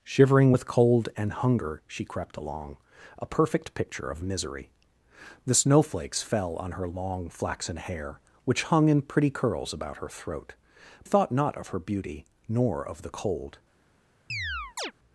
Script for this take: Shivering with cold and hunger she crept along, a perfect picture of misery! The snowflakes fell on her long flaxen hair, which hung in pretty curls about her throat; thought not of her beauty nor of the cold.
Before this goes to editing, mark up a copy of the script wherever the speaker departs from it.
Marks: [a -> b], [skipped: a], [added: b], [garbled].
Shivering with cold and hunger she crept along, a perfect picture of misery! The snowflakes fell on her long flaxen hair, which hung in pretty curls about her throat; thought not of her beauty nor of the cold.